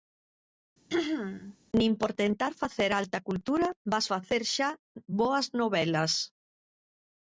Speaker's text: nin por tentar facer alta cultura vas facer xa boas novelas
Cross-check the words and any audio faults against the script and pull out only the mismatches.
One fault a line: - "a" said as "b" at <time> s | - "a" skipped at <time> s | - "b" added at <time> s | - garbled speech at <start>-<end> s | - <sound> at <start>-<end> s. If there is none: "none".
- throat clearing at 0.9-1.6 s